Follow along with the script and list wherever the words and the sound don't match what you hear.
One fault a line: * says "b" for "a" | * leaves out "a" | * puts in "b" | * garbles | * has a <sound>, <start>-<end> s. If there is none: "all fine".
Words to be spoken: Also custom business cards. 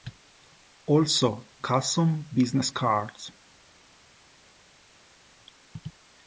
all fine